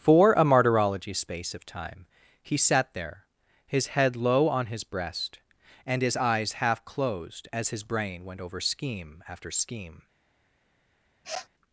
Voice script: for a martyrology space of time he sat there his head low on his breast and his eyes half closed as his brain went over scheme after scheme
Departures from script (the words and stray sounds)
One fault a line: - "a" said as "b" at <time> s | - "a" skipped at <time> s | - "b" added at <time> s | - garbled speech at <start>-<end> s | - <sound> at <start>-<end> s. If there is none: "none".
- sniff at 11.2-11.5 s